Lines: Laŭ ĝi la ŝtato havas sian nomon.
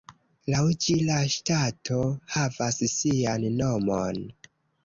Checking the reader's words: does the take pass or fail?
pass